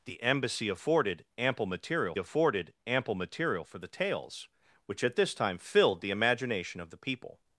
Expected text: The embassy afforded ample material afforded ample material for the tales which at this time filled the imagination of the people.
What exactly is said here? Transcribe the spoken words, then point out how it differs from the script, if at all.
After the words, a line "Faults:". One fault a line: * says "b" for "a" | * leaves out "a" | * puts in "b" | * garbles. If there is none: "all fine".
The embassy afforded ample material afforded ample material for the tales which at this time filled the imagination of the people.
Faults:
all fine